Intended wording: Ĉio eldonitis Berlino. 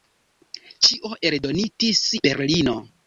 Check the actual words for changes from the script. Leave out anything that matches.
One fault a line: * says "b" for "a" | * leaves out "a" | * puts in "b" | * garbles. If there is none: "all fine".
all fine